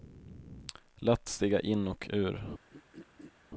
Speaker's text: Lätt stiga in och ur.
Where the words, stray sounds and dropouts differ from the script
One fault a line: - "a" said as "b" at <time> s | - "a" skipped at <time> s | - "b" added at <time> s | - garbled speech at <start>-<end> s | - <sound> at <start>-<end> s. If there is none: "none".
- throat clearing at 2.7-3.3 s